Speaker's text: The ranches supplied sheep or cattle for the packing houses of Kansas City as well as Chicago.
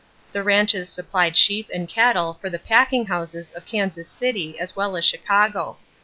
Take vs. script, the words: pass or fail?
fail